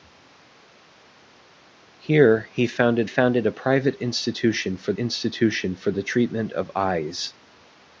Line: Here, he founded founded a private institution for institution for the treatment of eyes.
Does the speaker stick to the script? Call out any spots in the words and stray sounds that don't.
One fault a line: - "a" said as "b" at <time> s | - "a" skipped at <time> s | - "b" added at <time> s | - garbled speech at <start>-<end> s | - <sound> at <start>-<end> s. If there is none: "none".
none